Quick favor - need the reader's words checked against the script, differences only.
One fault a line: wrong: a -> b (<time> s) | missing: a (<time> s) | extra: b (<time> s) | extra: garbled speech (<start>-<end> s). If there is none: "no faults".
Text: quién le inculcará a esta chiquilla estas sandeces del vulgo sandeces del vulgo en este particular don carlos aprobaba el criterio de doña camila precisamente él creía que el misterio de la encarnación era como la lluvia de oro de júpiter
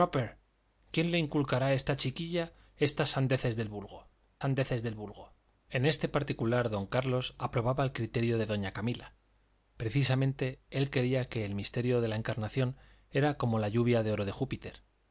no faults